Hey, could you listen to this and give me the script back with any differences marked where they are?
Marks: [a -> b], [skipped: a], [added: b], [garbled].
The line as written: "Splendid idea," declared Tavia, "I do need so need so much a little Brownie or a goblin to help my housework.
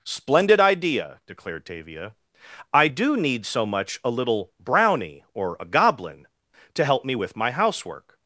"Splendid idea," declared Tavia, "I do need so [skipped: need so] much a little Brownie or a goblin to help [added: me with] my housework.